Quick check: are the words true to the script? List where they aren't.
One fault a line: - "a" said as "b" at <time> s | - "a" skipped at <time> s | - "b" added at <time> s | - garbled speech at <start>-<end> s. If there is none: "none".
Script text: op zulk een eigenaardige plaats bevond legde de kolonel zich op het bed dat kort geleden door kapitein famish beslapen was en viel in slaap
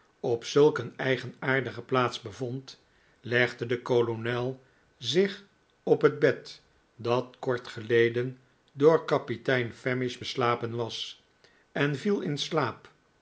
none